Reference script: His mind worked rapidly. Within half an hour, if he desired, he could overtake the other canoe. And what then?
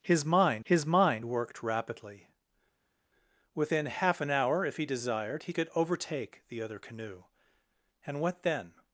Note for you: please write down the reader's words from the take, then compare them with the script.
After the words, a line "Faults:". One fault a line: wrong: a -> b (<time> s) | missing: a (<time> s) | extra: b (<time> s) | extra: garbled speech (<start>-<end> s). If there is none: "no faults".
His mind his mind worked rapidly. Within half an hour, if he desired, he could overtake the other canoe. And what then?
Faults:
extra: his mind (0.6 s)